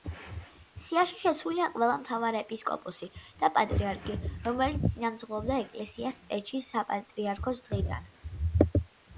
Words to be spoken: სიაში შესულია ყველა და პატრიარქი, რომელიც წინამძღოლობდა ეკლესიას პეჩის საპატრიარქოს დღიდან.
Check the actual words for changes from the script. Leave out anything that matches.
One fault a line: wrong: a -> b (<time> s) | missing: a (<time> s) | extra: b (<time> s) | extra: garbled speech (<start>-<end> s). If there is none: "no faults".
extra: მთავარეპისკოპოსი (2.0 s)